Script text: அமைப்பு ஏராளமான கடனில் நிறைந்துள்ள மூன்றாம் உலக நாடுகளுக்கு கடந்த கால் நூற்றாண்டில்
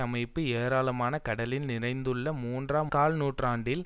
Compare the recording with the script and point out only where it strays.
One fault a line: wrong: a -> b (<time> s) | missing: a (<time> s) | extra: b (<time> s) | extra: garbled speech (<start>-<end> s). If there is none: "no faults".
missing: உலக நாடுகளுக்கு கடந்த (2.9 s)